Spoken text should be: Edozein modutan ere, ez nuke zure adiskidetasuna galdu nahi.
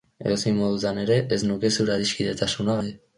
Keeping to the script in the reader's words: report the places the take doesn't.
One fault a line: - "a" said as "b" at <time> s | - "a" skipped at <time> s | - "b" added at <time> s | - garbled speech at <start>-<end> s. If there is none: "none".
- "galdu" skipped at 2.8 s